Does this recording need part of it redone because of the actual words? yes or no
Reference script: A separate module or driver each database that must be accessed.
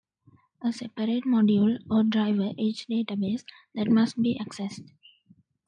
no